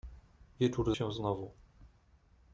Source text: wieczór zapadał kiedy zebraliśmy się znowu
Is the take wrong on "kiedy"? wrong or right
wrong